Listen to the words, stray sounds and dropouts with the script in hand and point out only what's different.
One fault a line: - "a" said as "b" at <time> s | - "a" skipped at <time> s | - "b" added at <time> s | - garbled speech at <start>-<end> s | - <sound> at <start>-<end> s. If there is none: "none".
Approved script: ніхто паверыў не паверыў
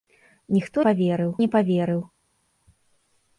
none